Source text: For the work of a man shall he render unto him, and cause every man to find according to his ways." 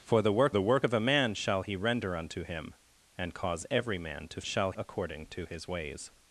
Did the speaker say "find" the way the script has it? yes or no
no